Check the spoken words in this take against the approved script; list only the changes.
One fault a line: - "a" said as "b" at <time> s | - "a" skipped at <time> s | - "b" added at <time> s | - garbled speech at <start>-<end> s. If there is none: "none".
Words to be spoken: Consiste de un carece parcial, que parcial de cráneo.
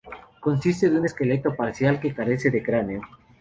- "carece" said as "esqueleto" at 1.0 s
- "parcial" said as "carece" at 2.1 s